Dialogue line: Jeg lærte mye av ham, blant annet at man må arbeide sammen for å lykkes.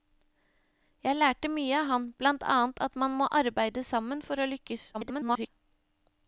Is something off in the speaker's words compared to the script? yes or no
yes